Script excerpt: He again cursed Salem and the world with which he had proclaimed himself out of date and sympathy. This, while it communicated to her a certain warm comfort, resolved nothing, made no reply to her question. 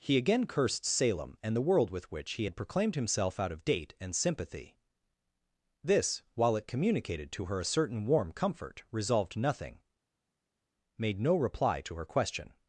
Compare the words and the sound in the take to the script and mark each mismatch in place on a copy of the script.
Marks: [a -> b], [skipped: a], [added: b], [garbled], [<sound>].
He again cursed Salem and the world with which he had proclaimed himself out of date and sympathy. This, while it communicated to her a certain warm comfort, resolved nothing, made no reply to her question.